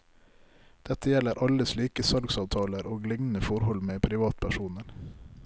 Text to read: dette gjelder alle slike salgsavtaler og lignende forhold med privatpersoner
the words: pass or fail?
pass